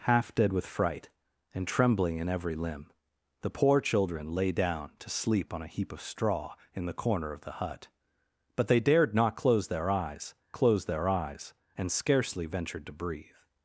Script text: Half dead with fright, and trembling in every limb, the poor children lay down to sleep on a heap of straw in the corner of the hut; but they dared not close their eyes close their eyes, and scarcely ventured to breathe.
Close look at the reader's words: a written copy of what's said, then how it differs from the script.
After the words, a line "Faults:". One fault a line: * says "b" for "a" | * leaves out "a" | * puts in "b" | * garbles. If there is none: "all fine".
Half dead with fright, and trembling in every limb, the poor children lay down to sleep on a heap of straw in the corner of the hut; but they dared not close their eyes close their eyes, and scarcely ventured to breathe.
Faults:
all fine